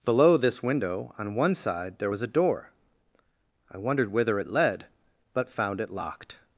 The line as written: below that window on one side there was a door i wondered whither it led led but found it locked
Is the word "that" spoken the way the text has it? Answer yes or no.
no